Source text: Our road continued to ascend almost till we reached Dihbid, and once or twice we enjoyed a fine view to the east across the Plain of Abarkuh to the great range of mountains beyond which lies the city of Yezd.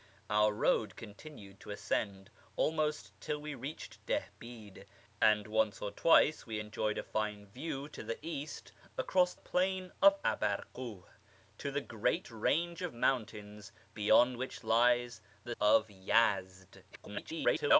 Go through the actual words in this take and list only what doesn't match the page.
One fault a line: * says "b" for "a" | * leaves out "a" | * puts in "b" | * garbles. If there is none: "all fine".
* leaves out "the"
* leaves out "city"
* garbles